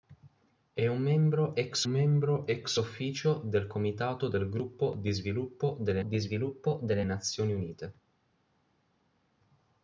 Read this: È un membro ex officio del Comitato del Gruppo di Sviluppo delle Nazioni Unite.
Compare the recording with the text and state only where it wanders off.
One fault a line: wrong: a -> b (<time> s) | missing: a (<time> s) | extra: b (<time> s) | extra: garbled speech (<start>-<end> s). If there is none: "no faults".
extra: membro ex (1.9 s)
extra: di Sviluppo delle (6.0 s)